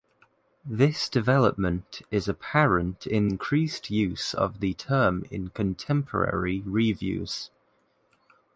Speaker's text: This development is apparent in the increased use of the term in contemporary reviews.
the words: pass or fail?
fail